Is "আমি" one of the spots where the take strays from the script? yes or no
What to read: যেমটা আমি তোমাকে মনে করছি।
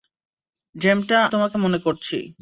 yes